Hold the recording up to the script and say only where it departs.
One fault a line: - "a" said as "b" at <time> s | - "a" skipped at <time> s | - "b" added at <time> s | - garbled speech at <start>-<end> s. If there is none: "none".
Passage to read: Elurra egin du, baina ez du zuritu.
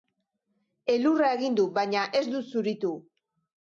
none